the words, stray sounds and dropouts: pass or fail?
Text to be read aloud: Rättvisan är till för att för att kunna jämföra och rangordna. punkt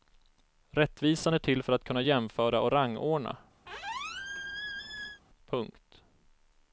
fail